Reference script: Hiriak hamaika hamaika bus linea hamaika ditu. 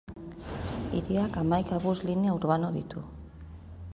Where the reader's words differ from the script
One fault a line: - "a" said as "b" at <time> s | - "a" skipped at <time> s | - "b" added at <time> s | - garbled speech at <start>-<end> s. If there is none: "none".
- "hamaika" skipped at 1.8 s
- "hamaika" said as "urbano" at 2.4 s